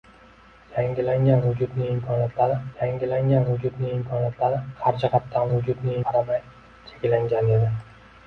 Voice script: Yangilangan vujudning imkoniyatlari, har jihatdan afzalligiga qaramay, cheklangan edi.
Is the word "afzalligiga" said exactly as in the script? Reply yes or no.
no